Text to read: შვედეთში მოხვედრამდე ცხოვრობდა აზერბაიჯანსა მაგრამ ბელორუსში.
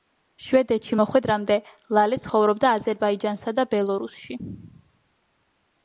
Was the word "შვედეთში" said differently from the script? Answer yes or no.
no